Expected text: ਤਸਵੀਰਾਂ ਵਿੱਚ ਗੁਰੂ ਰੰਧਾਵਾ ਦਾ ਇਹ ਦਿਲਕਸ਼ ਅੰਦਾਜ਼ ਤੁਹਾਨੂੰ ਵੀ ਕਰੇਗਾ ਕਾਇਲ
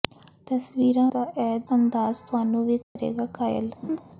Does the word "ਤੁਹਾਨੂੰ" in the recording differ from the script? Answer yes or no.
no